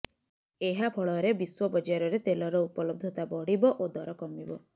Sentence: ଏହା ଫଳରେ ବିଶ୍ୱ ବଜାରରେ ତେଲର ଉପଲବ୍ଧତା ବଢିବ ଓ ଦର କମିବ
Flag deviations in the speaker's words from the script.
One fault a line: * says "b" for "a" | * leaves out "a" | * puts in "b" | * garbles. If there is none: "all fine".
all fine